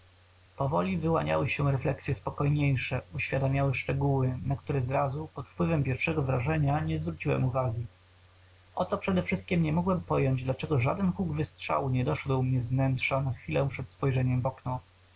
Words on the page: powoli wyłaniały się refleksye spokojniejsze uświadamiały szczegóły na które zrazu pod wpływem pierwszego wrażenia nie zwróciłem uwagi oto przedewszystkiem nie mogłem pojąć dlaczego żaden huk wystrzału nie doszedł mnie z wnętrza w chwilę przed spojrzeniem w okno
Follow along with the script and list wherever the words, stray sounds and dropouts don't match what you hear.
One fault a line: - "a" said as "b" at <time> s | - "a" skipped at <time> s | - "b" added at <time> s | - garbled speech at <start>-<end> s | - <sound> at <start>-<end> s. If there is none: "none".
- "w" said as "na" at 13.2 s